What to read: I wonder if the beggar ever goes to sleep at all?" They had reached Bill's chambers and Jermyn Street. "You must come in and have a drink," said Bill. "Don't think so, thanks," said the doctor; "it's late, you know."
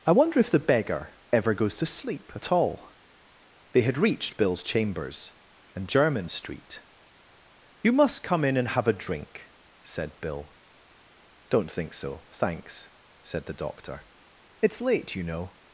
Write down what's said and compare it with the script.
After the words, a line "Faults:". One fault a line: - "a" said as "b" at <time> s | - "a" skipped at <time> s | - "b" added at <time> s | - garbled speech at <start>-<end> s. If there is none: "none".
I wonder if the beggar ever goes to sleep at all?" They had reached Bill's chambers and Jermyn Street. "You must come in and have a drink," said Bill. "Don't think so, thanks," said the doctor; "it's late, you know."
Faults:
none